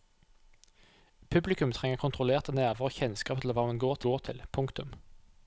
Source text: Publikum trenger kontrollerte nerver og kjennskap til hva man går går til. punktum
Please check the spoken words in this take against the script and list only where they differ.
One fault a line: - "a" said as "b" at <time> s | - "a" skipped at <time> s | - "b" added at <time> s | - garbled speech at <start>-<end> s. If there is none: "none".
none